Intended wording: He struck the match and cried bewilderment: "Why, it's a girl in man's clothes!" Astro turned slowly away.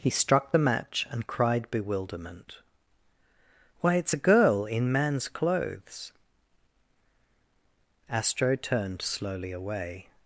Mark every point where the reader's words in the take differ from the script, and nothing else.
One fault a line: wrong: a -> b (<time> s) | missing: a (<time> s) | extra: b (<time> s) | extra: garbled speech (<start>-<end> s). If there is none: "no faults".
no faults